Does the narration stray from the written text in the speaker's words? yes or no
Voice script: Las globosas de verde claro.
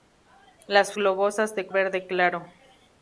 no